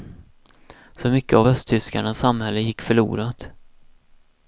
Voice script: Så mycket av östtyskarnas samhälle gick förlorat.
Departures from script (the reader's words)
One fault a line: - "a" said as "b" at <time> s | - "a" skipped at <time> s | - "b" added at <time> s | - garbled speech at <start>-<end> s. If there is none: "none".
none